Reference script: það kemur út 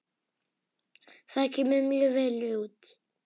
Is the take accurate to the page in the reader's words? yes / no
no